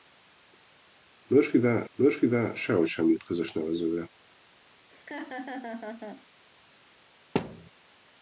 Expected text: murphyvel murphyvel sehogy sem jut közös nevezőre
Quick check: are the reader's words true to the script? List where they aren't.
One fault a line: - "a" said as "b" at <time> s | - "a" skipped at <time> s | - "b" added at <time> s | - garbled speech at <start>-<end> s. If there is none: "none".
none